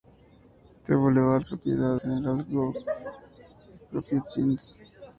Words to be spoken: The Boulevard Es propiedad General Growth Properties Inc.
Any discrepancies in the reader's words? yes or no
no